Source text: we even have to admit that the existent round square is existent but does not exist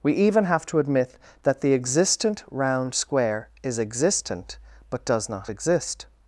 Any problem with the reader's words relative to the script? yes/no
no